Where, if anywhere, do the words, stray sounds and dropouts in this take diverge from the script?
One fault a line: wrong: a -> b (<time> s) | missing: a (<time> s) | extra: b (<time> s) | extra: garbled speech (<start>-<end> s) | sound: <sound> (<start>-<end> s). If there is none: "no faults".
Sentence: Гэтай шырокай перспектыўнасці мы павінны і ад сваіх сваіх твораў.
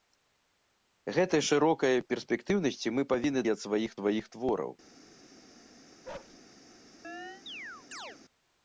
sound: bark (6.0-6.4 s)
sound: chirp (7.0-8.2 s)